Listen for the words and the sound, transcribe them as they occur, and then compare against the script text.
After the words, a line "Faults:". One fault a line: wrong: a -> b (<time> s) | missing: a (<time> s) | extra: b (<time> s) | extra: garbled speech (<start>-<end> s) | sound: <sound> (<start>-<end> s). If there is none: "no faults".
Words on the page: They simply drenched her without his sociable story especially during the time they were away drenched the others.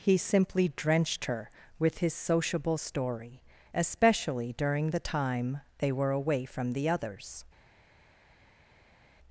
He simply drenched her with his sociable story especially during the time they were away from the others.
Faults:
wrong: They -> He (0.0 s)
wrong: without -> with (1.8 s)
wrong: drenched -> from (6.4 s)